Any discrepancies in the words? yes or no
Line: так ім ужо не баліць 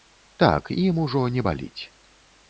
no